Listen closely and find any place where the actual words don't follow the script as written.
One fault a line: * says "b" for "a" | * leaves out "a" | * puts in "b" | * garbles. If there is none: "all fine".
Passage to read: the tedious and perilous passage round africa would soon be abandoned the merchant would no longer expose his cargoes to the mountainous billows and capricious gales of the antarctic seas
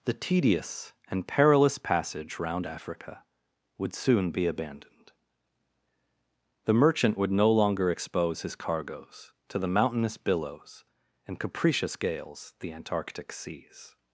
* leaves out "of"